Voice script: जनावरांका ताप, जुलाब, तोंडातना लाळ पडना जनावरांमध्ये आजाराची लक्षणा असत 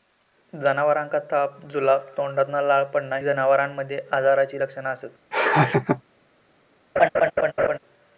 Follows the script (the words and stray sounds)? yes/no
no